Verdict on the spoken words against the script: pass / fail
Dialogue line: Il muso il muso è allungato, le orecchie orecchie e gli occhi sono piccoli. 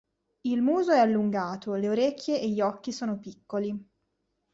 fail